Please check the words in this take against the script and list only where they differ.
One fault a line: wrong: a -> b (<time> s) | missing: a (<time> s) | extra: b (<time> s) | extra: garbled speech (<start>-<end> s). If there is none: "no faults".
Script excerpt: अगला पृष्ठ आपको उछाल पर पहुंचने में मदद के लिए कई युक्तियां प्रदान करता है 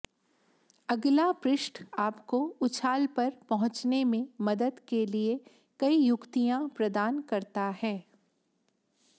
no faults